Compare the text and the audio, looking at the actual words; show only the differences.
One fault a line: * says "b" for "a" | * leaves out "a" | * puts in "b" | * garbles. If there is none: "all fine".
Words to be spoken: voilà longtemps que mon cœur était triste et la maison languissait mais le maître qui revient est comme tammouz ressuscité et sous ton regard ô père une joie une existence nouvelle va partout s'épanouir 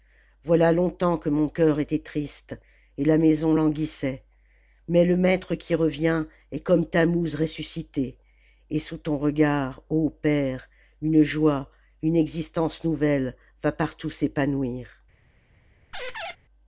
all fine